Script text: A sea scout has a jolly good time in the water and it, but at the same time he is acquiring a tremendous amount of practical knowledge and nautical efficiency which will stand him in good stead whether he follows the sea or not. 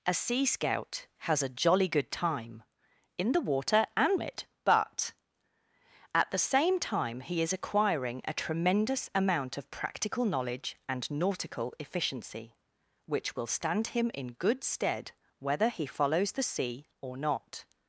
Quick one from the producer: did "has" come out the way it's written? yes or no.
yes